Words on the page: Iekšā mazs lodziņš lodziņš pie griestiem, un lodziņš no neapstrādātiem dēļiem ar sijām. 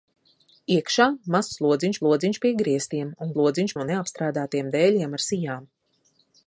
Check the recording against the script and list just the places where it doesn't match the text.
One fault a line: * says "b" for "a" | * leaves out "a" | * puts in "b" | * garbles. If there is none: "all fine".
all fine